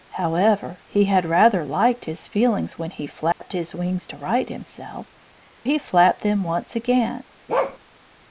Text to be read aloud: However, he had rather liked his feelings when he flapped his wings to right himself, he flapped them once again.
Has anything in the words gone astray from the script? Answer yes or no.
no